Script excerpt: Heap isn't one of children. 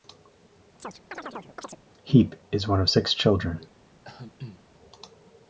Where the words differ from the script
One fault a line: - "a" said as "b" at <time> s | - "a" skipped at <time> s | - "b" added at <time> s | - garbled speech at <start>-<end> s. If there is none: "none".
- "isn't" said as "is" at 2.5 s
- "six" added at 2.9 s